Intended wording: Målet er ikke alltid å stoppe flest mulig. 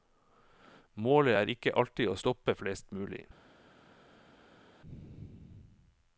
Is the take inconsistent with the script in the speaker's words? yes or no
no